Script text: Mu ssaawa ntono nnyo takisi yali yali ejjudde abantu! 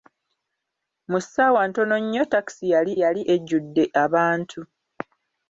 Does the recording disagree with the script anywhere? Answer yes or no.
no